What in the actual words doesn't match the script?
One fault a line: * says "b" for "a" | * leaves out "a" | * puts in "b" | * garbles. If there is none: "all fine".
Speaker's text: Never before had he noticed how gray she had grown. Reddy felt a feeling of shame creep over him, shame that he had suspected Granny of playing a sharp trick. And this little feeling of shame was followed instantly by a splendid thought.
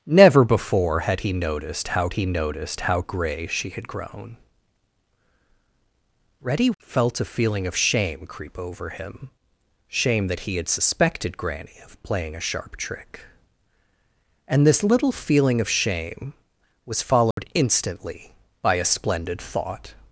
* puts in "he noticed how"